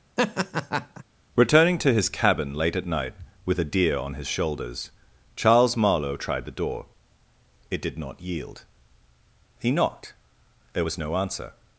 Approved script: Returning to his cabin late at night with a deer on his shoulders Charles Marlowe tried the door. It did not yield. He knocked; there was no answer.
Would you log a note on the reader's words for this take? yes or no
no